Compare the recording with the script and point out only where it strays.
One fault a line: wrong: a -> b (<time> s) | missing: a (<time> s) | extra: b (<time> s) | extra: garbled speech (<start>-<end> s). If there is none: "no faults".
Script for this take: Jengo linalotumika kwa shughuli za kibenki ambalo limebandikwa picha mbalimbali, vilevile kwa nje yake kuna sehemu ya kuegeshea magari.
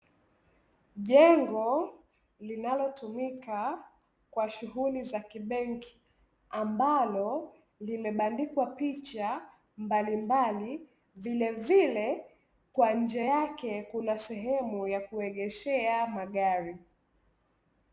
no faults